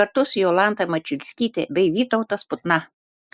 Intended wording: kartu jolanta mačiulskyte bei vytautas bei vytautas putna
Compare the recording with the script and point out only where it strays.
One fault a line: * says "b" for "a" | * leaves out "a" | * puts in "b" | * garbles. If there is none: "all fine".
* puts in "su"
* leaves out "bei vytautas"